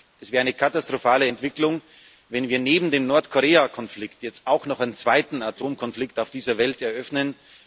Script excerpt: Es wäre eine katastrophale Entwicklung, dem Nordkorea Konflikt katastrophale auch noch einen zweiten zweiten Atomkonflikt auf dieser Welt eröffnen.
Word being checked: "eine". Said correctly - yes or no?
yes